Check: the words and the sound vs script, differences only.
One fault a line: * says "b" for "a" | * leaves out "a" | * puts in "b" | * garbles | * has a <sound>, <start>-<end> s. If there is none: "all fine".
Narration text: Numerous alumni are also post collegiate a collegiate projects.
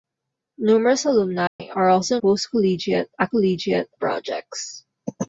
* has a dropout, 1.5-1.6 s